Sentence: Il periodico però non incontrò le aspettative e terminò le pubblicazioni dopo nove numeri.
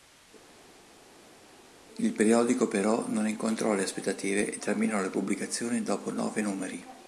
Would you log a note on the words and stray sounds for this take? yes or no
no